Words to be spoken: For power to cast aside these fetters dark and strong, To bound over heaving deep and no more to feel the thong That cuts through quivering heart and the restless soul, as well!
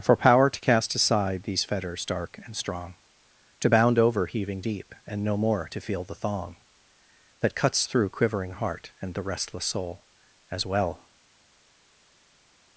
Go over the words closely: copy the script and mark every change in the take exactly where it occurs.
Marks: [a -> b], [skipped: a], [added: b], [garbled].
For power to cast aside these fetters dark and strong, To bound over heaving deep and no more to feel the thong That cuts through quivering heart and the restless soul, as well!